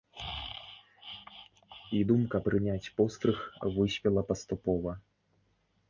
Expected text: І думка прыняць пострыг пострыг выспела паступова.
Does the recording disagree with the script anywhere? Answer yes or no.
yes